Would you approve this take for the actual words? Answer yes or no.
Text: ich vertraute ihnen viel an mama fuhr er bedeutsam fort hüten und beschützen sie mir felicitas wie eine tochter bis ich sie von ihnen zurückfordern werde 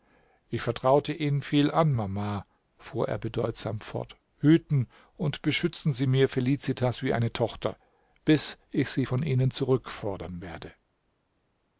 yes